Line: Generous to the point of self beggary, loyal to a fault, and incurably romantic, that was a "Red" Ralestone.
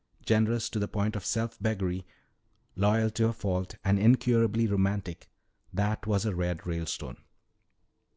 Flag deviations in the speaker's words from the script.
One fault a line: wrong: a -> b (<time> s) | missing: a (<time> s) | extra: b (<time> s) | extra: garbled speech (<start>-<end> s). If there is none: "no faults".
no faults